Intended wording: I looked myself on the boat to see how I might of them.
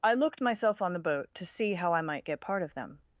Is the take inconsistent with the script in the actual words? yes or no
yes